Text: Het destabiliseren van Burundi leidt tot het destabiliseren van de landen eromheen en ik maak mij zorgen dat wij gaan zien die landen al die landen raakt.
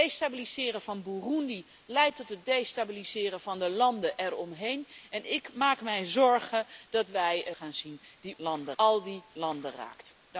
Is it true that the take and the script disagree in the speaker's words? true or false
false